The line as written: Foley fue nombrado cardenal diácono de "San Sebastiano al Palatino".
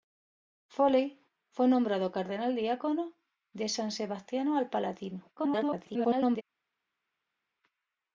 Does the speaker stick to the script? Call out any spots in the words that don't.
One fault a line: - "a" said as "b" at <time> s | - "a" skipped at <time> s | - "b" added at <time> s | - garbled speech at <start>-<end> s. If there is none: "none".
- garbled speech at 5.4-6.4 s